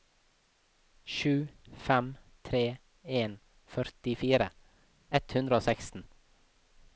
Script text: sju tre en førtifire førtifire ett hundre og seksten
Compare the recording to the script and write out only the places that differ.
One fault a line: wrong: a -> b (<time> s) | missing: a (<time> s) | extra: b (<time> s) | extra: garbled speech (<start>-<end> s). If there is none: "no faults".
extra: fem (1.9 s)
missing: førtifire (4.5 s)